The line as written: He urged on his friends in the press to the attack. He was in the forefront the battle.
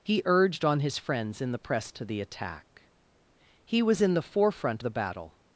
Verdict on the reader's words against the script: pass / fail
pass